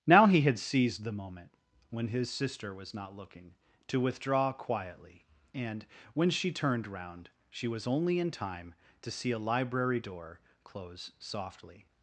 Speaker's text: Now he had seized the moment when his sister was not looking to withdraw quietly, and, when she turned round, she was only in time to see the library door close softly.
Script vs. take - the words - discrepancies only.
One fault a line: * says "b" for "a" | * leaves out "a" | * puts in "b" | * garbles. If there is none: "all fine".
* says "a" for "the"